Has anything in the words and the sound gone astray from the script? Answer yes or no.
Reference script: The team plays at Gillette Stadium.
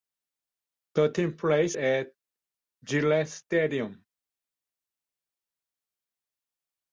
no